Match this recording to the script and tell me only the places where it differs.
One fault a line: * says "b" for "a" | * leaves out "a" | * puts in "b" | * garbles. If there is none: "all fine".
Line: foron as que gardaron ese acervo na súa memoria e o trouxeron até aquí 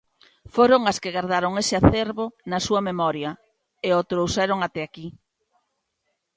all fine